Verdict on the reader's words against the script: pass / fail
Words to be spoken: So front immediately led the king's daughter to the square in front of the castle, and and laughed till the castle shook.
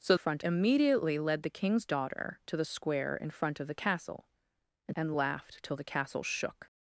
pass